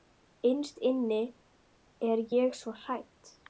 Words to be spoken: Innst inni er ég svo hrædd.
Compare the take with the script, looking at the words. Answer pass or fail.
pass